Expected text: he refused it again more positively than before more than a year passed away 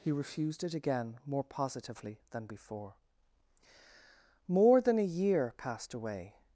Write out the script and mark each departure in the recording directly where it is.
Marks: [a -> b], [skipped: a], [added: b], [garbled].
he refused it again more positively than before more than a year passed away